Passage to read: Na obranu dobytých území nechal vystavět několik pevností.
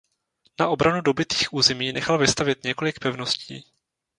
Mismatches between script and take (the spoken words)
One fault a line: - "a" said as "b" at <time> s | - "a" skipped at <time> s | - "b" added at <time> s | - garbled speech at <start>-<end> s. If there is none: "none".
none